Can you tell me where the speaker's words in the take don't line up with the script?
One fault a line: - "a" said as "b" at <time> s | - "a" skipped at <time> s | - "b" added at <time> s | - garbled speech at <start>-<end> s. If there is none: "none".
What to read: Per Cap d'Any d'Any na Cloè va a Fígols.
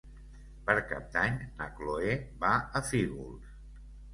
- "d'Any" skipped at 1.4 s